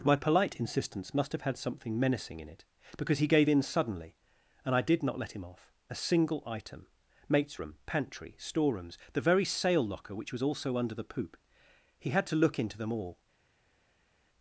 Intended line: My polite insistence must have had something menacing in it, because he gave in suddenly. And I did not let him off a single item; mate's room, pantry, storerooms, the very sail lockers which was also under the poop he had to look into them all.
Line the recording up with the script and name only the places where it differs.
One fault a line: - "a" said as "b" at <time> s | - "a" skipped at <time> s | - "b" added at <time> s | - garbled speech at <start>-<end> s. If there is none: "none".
- "lockers" said as "locker" at 9.9 s